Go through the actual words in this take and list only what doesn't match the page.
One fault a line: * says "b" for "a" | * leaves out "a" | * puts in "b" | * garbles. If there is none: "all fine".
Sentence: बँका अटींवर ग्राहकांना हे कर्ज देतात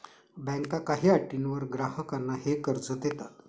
* puts in "काही"